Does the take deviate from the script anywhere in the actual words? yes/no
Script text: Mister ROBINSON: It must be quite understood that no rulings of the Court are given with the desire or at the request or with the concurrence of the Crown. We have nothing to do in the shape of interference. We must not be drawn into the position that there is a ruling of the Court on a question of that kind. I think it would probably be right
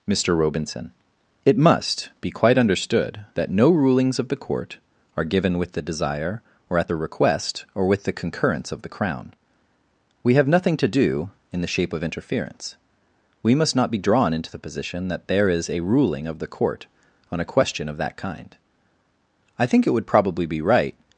no